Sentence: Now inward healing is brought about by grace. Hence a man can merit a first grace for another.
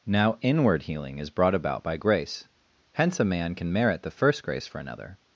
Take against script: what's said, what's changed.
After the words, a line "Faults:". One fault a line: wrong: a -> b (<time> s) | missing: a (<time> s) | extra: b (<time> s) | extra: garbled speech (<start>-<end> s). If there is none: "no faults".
Now inward healing is brought about by grace. Hence a man can merit the first grace for another.
Faults:
wrong: a -> the (4.0 s)